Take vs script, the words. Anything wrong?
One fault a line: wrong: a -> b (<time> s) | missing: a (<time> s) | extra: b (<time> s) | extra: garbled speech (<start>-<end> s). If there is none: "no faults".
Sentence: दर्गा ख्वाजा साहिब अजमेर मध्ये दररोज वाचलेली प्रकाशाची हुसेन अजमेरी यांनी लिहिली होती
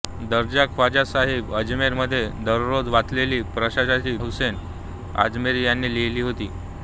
no faults